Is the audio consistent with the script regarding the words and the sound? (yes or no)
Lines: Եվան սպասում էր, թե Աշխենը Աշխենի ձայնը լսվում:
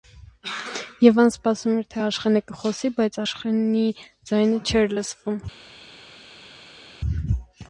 no